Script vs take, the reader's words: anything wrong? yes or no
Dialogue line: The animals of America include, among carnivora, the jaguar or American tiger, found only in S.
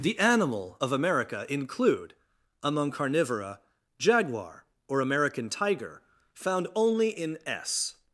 yes